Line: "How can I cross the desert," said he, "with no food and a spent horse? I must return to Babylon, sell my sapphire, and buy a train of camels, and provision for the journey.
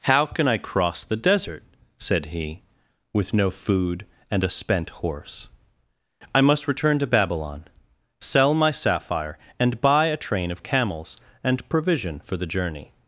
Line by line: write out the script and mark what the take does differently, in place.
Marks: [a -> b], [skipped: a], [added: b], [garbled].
"How can I cross the desert," said he, "with no food and a spent horse? I must return to Babylon, sell my sapphire, and buy a train of camels, and provision for the journey.